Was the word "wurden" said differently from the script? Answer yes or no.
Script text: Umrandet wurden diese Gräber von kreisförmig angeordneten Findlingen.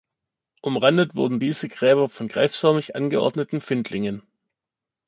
no